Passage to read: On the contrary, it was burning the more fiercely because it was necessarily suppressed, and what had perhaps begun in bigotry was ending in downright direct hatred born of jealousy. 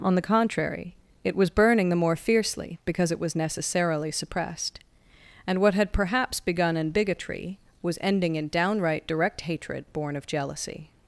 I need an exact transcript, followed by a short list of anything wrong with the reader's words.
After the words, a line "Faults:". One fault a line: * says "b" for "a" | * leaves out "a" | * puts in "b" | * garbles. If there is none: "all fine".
On the contrary, it was burning the more fiercely because it was necessarily suppressed, and what had perhaps begun in bigotry was ending in downright direct hatred born of jealousy.
Faults:
all fine